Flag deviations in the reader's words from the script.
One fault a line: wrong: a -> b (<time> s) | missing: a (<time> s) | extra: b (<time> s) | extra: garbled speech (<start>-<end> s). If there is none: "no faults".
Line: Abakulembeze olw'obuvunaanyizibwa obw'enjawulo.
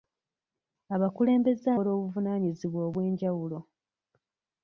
no faults